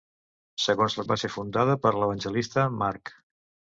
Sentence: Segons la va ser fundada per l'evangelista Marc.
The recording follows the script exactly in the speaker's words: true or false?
true